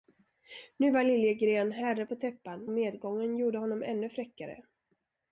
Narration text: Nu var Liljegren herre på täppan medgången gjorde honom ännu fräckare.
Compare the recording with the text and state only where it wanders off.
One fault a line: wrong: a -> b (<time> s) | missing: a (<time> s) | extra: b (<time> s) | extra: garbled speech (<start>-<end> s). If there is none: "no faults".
no faults